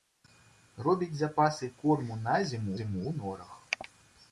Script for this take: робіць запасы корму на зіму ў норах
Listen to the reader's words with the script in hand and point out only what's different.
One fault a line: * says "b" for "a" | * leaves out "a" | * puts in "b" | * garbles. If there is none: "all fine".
* puts in "зіму"